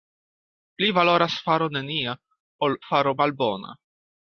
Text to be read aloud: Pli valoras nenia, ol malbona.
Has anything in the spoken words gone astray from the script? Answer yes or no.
yes